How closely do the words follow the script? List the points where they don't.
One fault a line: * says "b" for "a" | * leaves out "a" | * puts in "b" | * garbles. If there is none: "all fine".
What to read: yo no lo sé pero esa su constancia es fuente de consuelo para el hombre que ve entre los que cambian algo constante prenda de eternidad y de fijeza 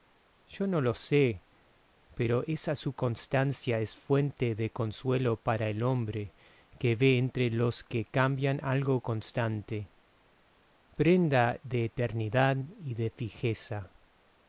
all fine